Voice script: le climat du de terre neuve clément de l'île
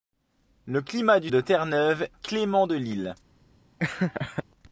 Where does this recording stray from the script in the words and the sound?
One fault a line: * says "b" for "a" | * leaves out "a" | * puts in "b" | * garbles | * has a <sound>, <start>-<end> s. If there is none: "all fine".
* has a laugh, 3.8-4.4 s